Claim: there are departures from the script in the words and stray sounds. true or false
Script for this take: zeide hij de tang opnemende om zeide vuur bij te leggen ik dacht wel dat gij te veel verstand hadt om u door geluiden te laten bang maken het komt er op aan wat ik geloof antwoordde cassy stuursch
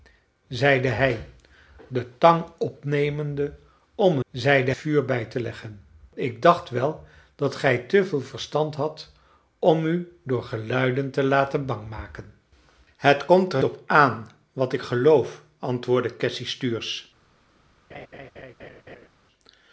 true